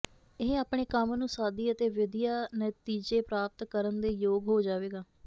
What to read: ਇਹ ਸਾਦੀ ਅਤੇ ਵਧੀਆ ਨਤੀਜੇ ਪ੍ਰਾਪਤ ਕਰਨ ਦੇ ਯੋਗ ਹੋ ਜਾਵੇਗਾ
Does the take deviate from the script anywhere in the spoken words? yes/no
yes